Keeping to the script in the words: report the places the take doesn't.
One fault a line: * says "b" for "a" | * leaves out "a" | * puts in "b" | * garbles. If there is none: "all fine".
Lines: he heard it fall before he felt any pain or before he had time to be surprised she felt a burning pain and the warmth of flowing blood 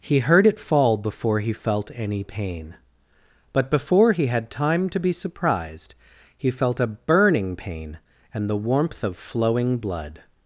* says "but" for "or"
* says "he" for "she"